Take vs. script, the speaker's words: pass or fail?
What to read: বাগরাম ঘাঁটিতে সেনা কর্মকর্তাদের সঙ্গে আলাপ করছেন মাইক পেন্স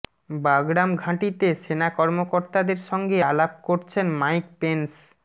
pass